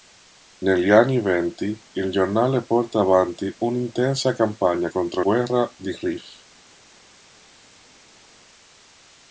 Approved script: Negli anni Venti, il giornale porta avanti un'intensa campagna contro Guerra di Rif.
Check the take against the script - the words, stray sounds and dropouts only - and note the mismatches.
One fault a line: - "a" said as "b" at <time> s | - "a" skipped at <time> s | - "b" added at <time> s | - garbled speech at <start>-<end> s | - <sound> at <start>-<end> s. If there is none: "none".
none